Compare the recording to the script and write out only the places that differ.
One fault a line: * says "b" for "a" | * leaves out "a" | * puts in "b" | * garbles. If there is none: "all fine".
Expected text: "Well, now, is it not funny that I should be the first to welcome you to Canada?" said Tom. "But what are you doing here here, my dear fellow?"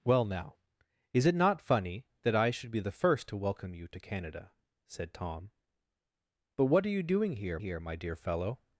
all fine